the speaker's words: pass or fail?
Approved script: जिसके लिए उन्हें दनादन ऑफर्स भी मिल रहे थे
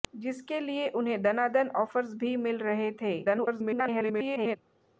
fail